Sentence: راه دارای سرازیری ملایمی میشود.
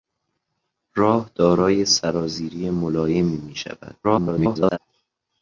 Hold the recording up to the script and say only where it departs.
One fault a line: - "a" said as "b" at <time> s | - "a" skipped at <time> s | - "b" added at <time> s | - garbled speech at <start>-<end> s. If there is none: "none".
- garbled speech at 4.0-4.8 s